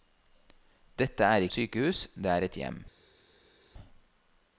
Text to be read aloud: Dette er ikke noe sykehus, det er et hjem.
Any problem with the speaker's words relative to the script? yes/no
yes